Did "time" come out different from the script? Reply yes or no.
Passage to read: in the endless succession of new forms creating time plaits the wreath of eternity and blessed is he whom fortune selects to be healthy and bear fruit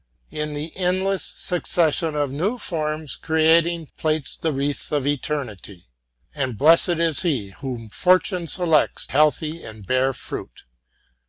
yes